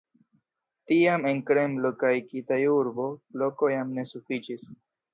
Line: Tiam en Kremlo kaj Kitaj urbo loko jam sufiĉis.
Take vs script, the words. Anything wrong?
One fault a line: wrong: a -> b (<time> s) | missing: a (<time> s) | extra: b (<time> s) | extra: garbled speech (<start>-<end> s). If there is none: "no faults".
extra: ne (4.0 s)